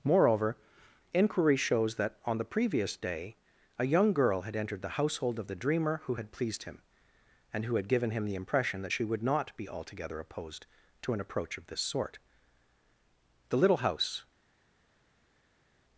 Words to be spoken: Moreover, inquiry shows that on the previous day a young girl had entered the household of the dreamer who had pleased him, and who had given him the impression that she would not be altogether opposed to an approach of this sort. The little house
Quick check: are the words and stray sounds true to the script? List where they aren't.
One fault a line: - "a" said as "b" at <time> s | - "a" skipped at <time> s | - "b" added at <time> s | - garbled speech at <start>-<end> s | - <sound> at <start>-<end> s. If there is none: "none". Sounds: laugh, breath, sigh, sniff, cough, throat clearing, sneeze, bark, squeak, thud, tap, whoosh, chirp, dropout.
none